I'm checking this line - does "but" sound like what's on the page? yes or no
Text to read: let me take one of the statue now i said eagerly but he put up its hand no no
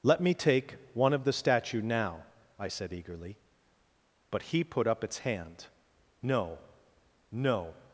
yes